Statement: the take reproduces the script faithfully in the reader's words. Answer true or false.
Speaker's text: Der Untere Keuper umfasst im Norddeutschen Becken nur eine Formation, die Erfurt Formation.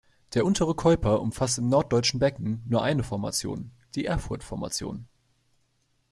true